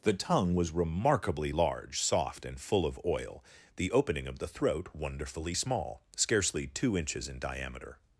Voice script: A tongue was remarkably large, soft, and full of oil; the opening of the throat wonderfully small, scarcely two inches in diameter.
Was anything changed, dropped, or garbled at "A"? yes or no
yes